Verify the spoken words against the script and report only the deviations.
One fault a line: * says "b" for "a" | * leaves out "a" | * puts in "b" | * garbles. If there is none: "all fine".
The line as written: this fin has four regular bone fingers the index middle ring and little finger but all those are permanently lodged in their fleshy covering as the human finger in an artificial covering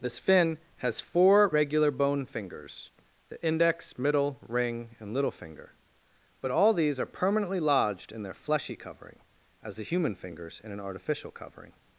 * says "these" for "those"
* says "fingers" for "finger"